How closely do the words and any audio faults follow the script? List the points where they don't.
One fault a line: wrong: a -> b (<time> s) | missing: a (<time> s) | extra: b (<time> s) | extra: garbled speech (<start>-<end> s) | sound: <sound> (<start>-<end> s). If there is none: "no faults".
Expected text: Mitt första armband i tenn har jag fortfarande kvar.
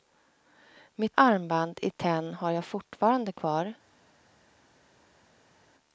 missing: första (1.2 s)